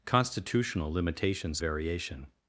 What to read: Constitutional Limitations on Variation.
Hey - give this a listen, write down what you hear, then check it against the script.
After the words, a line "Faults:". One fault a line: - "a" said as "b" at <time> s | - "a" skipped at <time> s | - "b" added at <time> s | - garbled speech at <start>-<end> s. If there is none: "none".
Constitutional Limitations Variation.
Faults:
- "on" skipped at 1.6 s